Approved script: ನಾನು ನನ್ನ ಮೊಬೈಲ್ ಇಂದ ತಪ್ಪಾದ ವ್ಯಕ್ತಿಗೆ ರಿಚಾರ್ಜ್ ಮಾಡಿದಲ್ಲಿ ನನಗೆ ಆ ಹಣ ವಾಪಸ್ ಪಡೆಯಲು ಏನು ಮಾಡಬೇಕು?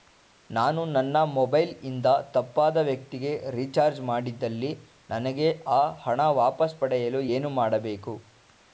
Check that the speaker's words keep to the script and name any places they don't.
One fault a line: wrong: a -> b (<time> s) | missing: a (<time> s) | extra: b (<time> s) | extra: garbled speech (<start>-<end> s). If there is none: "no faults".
no faults